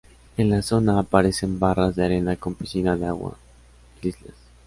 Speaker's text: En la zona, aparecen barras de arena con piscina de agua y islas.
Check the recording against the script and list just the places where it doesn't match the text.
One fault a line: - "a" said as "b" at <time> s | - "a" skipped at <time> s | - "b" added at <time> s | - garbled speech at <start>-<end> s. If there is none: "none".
none